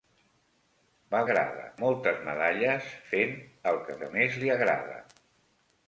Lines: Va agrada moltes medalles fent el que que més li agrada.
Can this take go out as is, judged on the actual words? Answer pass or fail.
pass